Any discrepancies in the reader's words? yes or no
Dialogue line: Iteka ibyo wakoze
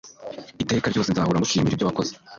yes